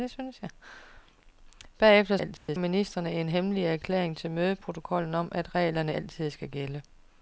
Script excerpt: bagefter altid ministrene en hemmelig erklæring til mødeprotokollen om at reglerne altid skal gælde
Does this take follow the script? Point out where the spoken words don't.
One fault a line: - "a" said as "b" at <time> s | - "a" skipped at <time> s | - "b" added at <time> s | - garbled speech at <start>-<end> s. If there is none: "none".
none